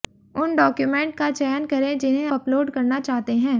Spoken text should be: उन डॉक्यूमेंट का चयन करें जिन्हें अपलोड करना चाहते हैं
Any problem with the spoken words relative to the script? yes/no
no